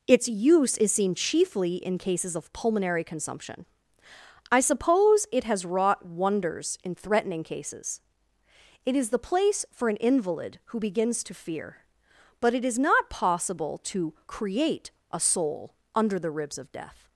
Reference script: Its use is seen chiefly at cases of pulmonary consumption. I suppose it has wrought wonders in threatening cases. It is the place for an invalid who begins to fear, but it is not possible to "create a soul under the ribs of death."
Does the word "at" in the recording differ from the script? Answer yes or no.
yes